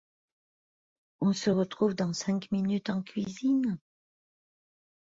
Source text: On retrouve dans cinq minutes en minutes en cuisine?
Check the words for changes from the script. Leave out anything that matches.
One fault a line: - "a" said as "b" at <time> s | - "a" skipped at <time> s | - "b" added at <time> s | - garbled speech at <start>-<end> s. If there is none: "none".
- "se" added at 1.3 s
- "minutes en" skipped at 3.0 s